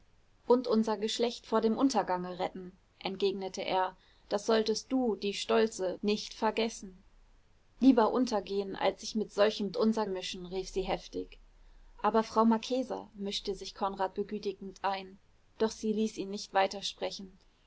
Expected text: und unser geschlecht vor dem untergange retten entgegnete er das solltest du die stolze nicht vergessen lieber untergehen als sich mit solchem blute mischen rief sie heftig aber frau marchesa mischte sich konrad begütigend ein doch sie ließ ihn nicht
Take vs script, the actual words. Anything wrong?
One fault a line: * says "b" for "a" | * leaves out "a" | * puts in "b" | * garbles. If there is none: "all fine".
* says "unser" for "blute"